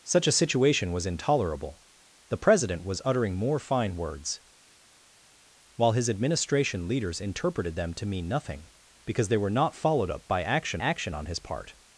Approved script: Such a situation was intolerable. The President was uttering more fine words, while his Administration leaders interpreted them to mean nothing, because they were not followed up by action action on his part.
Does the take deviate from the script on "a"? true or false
false